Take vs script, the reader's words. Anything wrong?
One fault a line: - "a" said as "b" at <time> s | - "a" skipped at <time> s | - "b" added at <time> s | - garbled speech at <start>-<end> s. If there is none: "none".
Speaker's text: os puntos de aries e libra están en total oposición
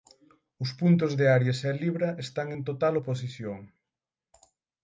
none